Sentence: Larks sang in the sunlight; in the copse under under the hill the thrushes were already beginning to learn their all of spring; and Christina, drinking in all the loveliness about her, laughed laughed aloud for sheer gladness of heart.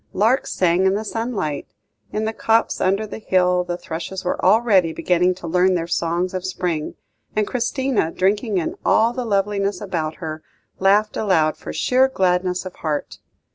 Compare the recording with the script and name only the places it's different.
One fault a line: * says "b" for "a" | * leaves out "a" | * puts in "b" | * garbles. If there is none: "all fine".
* leaves out "under"
* says "songs" for "all"
* leaves out "laughed"